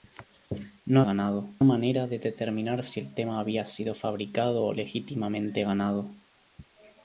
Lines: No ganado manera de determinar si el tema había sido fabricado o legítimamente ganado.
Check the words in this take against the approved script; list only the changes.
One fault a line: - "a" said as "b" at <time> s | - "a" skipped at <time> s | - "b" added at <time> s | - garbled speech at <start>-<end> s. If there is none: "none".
none